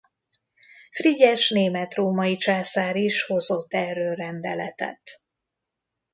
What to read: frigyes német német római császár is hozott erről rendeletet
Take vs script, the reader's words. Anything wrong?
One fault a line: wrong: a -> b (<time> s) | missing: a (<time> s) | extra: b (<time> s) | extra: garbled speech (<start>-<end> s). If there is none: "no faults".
missing: német (1.9 s)